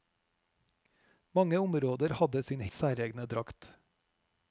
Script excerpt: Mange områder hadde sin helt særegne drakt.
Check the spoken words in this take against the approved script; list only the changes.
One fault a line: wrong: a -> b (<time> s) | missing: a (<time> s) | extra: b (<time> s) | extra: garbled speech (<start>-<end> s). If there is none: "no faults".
missing: helt (2.6 s)